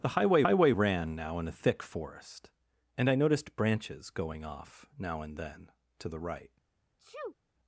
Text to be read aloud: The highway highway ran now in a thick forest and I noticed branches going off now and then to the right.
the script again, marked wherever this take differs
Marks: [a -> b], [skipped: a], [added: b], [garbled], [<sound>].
The highway highway ran now in a thick forest and I noticed branches going off now and then to the right. [sneeze]